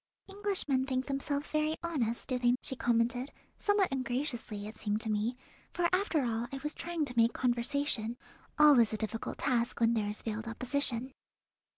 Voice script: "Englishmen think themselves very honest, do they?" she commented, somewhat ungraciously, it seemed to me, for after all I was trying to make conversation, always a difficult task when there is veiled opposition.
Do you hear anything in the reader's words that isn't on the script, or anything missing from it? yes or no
no